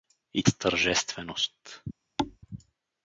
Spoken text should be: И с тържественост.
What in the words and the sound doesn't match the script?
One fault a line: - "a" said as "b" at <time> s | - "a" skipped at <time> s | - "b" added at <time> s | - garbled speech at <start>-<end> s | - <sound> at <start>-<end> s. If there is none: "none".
- thud at 2.2-2.4 s